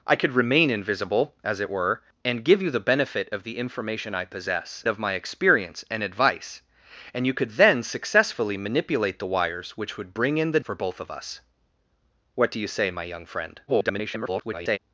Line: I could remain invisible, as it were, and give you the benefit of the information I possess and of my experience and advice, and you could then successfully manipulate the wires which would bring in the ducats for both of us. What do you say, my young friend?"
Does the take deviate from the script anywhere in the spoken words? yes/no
yes